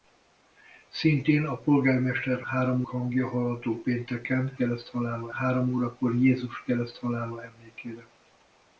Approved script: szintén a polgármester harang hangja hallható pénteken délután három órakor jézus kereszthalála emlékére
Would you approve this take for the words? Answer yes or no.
no